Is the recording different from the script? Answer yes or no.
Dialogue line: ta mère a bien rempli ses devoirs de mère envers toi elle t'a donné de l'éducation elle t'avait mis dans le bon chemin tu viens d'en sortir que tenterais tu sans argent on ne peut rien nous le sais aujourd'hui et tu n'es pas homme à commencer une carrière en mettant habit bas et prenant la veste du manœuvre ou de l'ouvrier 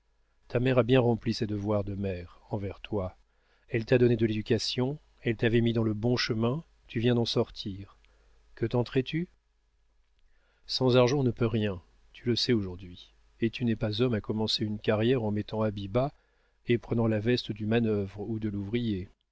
yes